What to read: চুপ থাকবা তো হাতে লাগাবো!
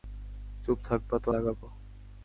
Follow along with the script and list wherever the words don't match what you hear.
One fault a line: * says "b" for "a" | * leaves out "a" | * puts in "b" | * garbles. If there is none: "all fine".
* leaves out "হাতে"